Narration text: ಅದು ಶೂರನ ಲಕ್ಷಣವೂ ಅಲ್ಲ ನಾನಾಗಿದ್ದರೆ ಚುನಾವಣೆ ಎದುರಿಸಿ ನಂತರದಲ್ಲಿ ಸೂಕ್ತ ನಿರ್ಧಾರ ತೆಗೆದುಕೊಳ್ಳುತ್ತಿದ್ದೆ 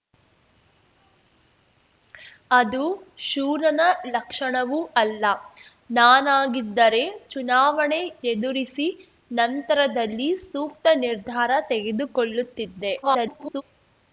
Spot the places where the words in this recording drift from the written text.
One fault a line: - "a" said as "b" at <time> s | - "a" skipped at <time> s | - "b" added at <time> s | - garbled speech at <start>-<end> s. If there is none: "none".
- garbled speech at 13.0-13.6 s